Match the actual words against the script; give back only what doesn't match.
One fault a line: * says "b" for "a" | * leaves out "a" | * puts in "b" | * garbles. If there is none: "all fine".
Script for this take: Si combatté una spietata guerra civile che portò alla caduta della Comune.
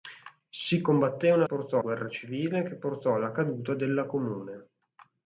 * says "portò" for "spietata"